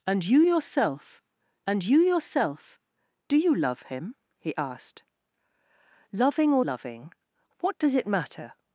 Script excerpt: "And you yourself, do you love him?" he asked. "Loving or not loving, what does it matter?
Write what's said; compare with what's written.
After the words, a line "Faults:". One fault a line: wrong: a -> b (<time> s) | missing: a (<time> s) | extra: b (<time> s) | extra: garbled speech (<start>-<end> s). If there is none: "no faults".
"And you yourself and you yourself, do you love him?" he asked. "Loving or loving, what does it matter?
Faults:
extra: and you yourself (1.7 s)
missing: not (6.6 s)